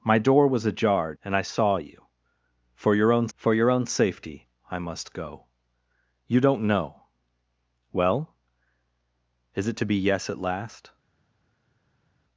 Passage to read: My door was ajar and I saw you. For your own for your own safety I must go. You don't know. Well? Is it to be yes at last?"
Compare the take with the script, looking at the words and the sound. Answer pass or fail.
pass